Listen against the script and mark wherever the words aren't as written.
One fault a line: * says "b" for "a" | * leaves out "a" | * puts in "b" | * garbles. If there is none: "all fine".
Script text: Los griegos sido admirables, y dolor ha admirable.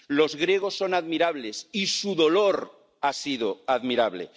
* says "son" for "sido"
* puts in "su"
* puts in "sido"